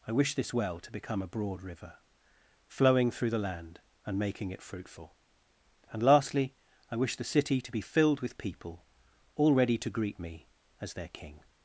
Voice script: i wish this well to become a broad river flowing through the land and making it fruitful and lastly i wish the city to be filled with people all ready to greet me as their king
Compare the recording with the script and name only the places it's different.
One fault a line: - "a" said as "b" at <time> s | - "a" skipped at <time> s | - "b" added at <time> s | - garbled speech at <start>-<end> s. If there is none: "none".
none